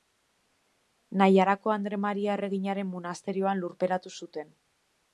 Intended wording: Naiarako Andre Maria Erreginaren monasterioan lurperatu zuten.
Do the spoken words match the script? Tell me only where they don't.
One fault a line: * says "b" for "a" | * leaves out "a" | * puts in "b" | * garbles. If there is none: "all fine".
all fine